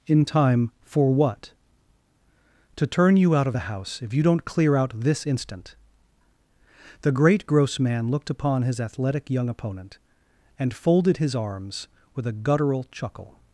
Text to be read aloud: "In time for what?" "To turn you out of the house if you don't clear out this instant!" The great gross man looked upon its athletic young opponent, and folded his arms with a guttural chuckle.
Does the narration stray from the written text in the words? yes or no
yes